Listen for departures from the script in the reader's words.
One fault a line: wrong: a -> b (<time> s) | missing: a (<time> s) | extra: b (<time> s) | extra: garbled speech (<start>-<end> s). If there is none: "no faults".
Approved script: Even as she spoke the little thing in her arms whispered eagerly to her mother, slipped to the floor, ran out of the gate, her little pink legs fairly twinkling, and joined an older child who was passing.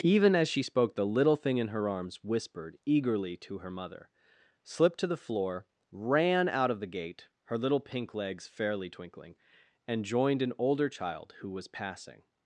no faults